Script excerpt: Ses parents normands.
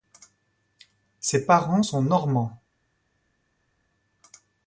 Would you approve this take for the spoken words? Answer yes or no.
no